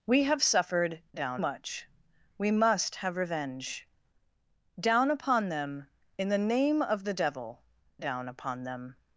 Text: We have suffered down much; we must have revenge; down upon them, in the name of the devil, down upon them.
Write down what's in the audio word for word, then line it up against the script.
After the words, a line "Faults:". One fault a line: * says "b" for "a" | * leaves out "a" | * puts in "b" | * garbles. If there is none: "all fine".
We have suffered down much; we must have revenge; down upon them, in the name of the devil, down upon them.
Faults:
all fine